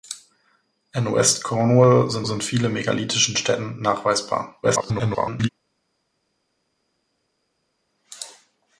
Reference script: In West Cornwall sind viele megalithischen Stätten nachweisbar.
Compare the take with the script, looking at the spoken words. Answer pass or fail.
fail